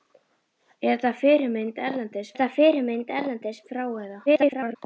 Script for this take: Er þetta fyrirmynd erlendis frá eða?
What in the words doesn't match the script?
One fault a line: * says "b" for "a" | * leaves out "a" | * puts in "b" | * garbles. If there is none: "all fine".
* puts in "þetta fyrirmynd erlendis"
* garbles